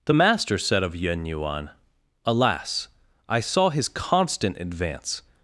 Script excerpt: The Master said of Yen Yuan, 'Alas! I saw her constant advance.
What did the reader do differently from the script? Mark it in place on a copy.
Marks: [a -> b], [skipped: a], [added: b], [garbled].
The Master said of Yen Yuan, 'Alas! I saw [her -> his] constant advance.